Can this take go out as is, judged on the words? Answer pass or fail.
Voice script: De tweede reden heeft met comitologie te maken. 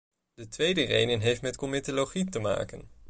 pass